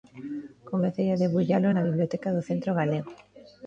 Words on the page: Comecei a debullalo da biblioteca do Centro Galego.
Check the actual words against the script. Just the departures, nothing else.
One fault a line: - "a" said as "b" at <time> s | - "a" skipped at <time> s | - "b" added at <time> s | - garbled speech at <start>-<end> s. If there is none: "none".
- "da" said as "na" at 1.7 s